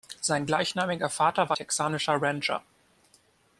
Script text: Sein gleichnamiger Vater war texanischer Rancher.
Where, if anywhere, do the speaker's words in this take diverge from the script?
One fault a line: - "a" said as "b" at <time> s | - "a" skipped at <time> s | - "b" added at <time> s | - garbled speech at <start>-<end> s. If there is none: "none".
none